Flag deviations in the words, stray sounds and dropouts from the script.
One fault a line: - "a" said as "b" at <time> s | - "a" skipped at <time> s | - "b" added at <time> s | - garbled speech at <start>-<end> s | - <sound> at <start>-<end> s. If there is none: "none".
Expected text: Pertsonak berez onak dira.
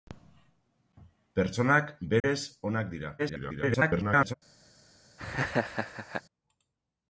- dropout at 2.2-2.2 s
- garbled speech at 3.2-4.3 s
- laugh at 5.2-6.2 s